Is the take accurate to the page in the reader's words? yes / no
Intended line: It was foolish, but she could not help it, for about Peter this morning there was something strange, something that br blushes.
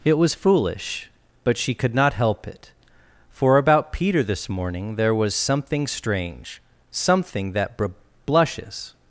yes